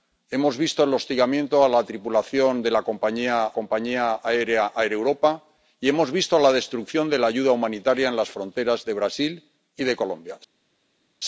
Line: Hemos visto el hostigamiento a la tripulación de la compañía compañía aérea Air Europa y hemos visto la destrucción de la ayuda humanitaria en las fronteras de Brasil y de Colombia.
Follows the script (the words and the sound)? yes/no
yes